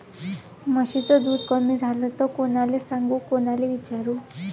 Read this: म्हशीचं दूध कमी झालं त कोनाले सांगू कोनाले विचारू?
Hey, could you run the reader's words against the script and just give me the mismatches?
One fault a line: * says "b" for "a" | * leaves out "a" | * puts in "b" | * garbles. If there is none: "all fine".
all fine